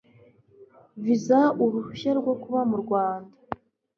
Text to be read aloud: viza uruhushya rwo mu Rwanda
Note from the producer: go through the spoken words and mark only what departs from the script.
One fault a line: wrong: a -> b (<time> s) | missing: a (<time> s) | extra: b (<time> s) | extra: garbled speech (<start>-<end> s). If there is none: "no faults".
extra: kuba (2.4 s)